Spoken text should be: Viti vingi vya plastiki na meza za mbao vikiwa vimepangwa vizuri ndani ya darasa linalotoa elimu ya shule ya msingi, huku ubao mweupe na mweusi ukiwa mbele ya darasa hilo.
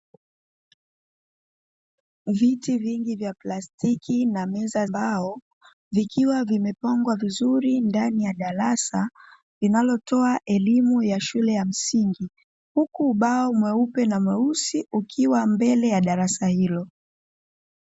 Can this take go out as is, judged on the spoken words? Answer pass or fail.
fail